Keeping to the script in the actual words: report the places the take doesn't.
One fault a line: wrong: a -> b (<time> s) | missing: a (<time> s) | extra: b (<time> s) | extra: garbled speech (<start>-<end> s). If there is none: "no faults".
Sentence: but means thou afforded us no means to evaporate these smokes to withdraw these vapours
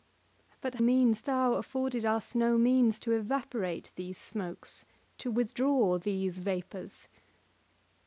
no faults